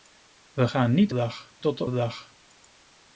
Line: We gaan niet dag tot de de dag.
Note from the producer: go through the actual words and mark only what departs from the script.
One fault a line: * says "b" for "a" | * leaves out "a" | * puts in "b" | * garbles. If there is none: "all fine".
all fine